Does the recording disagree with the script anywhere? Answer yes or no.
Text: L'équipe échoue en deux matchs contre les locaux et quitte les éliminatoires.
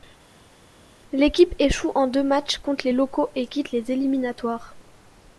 no